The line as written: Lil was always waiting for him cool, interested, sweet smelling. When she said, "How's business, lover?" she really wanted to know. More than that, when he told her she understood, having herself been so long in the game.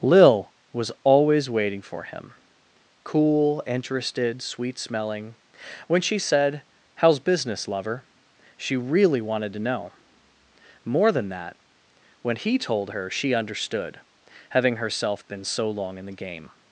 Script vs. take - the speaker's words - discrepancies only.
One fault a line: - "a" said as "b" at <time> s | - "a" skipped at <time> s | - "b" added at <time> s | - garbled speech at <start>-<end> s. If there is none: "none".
none